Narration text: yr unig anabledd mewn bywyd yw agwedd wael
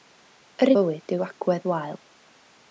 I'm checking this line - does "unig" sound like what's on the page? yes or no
no